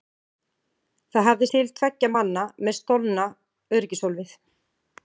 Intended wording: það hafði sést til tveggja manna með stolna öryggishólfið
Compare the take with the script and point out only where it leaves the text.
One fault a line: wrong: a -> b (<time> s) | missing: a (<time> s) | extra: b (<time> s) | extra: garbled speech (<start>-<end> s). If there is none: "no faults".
missing: sést (1.5 s)